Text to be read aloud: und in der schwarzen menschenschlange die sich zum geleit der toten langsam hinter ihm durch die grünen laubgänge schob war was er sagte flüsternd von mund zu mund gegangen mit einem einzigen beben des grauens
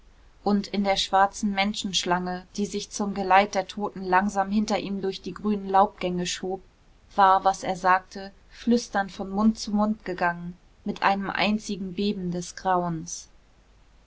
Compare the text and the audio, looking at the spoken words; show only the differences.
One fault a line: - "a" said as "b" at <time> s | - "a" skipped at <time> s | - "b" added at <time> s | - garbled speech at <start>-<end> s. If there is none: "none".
none